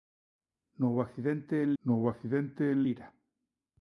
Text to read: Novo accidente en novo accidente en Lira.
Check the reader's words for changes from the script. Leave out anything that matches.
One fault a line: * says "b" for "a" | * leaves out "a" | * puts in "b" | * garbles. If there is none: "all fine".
all fine